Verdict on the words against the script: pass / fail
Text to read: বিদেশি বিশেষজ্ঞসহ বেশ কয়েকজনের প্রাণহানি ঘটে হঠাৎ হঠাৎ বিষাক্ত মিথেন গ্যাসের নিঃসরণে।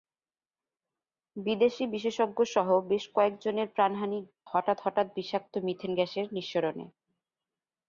fail